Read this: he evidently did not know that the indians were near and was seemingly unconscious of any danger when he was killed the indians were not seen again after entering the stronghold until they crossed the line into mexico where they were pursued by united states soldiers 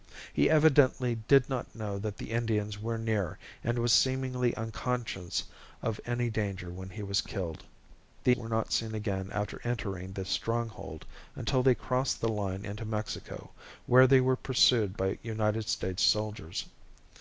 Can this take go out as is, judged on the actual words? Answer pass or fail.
fail